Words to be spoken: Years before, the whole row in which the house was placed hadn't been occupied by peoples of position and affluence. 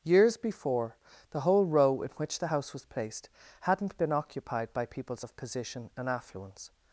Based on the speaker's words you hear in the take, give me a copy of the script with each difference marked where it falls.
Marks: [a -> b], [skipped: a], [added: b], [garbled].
Years before, the whole row in which the house was placed hadn't been occupied by peoples of position and affluence.